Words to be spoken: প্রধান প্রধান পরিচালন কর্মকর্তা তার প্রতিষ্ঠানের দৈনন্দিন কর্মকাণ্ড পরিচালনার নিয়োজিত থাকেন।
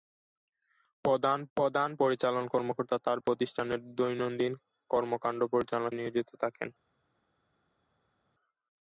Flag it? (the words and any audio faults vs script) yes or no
no